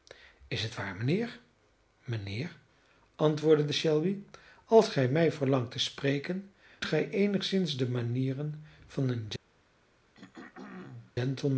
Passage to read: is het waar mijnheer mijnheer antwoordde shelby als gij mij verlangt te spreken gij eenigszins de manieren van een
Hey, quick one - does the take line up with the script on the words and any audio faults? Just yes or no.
no